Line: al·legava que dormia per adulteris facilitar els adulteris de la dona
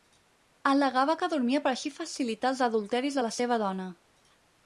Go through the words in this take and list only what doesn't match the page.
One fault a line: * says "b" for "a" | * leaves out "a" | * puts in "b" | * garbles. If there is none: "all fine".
* says "així" for "adulteris"
* puts in "seva"